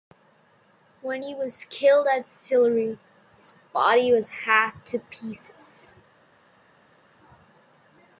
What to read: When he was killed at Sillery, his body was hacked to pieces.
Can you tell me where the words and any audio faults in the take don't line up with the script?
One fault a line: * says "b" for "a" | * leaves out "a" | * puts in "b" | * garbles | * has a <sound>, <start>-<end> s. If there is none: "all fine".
all fine